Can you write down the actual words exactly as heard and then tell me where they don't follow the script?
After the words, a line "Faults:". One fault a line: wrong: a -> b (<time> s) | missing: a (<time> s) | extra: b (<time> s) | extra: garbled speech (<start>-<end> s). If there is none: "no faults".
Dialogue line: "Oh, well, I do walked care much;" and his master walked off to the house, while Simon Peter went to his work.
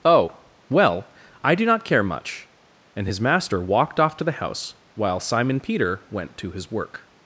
"Oh, well, I do not care much;" and his master walked off to the house, while Simon Peter went to his work.
Faults:
wrong: walked -> not (1.6 s)